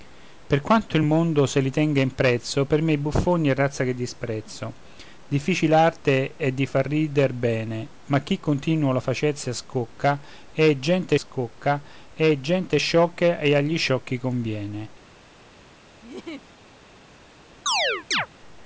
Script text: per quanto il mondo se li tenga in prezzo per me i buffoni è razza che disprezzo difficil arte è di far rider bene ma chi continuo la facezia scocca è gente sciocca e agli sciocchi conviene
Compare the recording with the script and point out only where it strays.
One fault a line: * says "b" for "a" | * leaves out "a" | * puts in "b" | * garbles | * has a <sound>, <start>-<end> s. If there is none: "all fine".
* puts in "scocca è gente"
* has a laugh, 16.0-16.5 s
* has a chirp, 17.7-18.3 s